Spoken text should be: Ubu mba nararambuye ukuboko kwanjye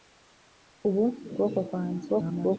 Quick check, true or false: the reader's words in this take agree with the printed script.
false